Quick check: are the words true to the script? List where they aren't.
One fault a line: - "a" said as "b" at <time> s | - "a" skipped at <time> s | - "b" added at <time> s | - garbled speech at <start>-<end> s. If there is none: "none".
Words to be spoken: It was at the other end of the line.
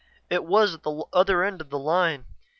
none